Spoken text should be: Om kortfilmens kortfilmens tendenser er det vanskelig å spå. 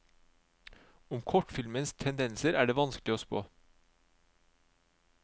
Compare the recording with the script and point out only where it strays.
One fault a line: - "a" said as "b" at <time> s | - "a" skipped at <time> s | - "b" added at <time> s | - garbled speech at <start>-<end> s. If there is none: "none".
- "kortfilmens" skipped at 1.9 s